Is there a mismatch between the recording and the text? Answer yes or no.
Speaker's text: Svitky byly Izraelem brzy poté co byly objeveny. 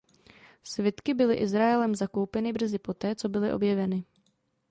yes